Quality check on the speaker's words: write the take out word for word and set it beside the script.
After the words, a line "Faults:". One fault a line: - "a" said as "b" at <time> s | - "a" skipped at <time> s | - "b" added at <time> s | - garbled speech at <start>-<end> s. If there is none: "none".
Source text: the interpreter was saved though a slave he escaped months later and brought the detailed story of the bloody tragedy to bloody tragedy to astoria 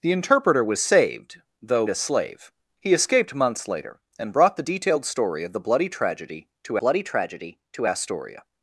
the interpreter was saved though a slave he escaped months later and brought the detailed story of the bloody tragedy to bloody tragedy to astoria
Faults:
none